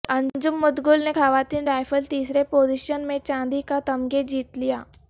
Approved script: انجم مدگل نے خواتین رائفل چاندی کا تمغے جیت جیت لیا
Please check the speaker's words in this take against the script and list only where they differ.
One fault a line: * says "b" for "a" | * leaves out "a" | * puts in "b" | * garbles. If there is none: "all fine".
* puts in "تیسرے پوزیشن میں"
* leaves out "جیت"